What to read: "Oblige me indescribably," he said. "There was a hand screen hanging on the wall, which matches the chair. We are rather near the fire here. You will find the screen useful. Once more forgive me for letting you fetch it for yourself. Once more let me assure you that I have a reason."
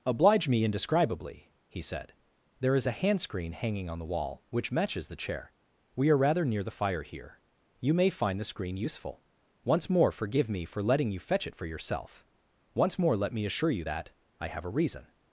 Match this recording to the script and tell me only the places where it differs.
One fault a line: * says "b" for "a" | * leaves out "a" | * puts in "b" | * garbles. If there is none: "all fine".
* says "is" for "was"
* says "may" for "will"